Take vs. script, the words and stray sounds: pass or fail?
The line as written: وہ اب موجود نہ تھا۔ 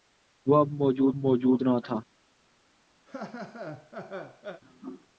fail